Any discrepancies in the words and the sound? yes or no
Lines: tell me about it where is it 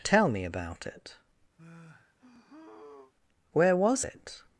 yes